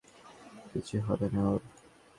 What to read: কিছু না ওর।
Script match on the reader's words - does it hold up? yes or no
no